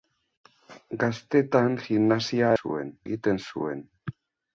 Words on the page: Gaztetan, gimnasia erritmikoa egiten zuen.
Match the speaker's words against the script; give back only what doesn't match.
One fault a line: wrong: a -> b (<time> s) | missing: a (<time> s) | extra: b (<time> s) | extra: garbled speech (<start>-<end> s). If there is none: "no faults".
wrong: erritmikoa -> zuen (2.6 s)